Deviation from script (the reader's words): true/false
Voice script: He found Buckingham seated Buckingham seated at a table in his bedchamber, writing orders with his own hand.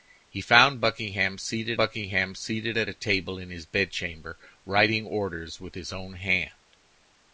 false